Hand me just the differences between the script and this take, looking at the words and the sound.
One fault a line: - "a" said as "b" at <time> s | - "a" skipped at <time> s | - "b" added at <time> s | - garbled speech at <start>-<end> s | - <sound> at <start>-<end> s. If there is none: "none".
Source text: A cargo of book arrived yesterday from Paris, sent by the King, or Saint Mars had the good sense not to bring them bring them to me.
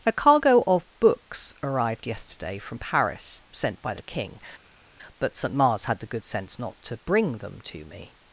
- "book" said as "books" at 1.0 s
- "or" said as "but" at 5.2 s
- "bring them" skipped at 7.6 s